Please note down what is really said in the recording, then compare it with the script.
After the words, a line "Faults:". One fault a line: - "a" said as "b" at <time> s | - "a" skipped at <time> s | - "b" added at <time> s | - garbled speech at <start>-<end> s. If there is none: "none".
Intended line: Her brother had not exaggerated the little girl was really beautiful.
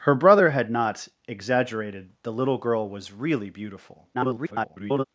Her brother had not exaggerated the little girl was really beautiful. [garbled]
Faults:
- garbled speech at 4.1-5.0 s